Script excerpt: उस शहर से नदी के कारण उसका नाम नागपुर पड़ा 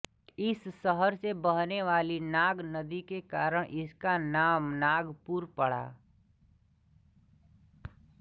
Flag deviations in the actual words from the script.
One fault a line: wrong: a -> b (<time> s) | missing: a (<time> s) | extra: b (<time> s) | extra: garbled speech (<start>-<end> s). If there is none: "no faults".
wrong: उस -> इस (0.4 s)
extra: बहने वाली नाग (1.4 s)
wrong: उसका -> इसका (3.8 s)